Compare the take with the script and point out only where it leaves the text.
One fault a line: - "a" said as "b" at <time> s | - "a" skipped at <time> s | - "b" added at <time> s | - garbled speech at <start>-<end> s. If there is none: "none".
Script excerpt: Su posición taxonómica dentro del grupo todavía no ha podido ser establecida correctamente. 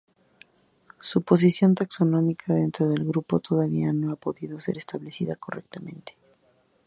none